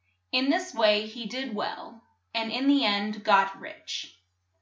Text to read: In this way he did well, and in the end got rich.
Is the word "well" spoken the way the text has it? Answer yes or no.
yes